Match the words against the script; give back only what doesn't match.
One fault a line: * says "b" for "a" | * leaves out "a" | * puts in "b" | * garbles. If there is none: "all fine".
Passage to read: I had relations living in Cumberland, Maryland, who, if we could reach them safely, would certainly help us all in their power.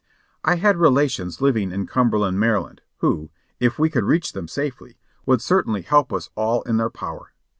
all fine